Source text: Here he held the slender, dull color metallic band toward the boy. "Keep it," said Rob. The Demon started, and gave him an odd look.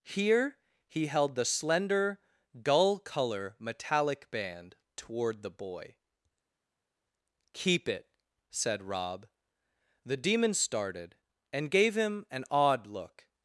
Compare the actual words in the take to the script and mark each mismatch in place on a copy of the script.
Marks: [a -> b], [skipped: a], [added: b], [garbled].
Here he held the slender, dull color metallic band toward the boy. "Keep it," said Rob. The Demon started, and gave him an odd look.